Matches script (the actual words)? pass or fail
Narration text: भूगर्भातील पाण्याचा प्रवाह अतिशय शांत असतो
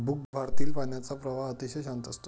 pass